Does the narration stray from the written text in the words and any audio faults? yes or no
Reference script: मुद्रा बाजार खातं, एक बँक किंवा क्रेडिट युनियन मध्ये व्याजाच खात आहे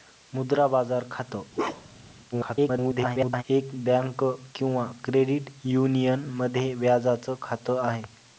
yes